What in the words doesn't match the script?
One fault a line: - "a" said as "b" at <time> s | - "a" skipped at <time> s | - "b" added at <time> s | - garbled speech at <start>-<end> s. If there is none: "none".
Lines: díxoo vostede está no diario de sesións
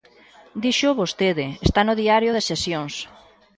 none